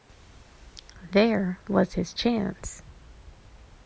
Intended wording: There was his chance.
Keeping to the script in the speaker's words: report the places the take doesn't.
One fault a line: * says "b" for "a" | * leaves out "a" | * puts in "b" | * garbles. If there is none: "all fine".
all fine